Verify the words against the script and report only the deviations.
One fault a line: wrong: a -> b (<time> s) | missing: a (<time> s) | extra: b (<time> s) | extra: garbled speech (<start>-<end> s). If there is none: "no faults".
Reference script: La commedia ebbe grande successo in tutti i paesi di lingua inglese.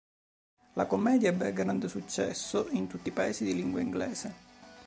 no faults